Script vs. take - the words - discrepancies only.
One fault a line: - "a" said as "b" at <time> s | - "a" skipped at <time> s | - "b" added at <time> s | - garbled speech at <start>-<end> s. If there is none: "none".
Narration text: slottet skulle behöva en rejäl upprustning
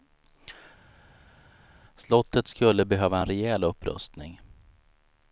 none